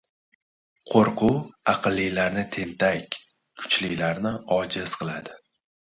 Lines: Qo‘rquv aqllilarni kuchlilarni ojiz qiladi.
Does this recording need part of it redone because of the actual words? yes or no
yes